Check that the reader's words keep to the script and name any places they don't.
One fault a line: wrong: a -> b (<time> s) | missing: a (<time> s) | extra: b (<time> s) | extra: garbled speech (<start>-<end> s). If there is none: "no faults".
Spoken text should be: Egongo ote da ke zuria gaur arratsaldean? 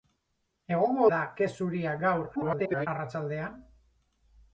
missing: ote (1.0 s)
extra: garbled speech (2.3-2.9 s)